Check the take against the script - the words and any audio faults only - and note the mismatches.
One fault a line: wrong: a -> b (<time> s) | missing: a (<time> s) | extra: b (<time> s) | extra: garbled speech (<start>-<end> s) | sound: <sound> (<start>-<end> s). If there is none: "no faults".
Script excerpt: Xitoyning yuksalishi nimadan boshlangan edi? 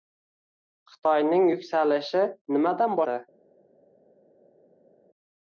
missing: boshlangan (3.0 s)